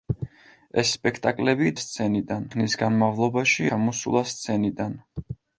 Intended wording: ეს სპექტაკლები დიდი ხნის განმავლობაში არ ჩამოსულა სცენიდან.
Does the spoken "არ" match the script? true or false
false